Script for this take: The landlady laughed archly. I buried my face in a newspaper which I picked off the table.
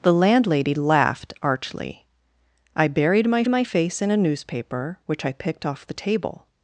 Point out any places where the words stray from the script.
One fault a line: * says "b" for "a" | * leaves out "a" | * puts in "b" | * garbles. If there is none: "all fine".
* puts in "my"